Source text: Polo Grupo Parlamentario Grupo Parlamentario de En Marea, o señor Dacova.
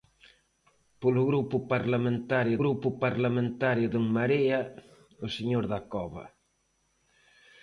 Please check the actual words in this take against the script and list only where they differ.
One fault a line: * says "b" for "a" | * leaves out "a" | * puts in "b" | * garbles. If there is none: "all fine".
all fine